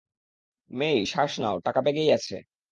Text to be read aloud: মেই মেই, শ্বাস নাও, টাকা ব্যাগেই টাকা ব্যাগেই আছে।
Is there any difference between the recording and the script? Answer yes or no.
yes